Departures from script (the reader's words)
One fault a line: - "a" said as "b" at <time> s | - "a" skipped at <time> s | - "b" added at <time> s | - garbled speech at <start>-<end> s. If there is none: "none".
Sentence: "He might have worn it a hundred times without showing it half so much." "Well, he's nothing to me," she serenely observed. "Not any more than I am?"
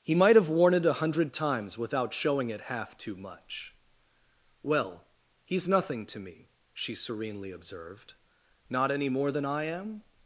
- "so" said as "too" at 3.0 s